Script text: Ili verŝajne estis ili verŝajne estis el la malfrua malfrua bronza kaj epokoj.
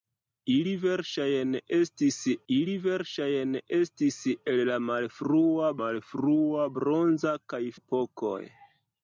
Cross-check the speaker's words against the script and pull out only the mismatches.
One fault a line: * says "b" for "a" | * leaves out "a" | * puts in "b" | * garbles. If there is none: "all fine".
all fine